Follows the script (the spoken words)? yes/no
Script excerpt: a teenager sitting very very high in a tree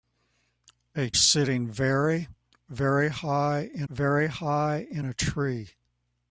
no